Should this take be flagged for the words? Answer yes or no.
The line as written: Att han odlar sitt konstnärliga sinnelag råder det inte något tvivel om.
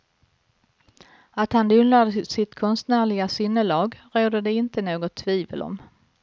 no